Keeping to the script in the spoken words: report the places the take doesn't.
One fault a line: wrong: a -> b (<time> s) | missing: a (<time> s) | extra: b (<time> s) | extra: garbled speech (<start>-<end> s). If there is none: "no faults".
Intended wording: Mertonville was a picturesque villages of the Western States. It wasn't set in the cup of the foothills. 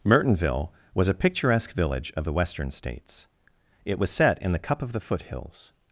wrong: villages -> village (1.7 s)
wrong: wasn't -> was (4.0 s)